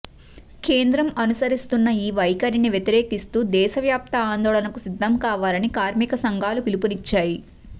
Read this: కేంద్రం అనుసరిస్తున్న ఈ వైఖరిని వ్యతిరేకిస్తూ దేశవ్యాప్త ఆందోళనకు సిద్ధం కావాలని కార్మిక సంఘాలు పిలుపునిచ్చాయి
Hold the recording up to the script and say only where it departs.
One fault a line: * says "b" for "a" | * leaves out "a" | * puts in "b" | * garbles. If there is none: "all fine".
all fine